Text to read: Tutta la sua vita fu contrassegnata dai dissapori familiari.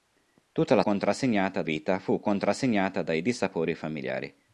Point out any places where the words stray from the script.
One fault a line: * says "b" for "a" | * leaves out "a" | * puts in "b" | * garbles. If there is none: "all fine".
* says "contrassegnata" for "sua"